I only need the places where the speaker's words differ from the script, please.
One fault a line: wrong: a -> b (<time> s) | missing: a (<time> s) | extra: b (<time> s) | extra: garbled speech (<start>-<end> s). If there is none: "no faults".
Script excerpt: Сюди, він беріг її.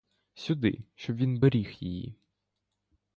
extra: щоб (0.9 s)